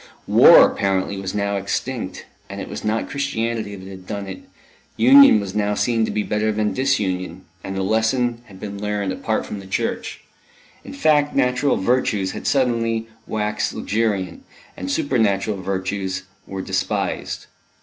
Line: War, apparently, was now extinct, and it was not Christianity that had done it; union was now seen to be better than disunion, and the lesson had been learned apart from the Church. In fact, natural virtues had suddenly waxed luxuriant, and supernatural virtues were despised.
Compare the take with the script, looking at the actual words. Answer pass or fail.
pass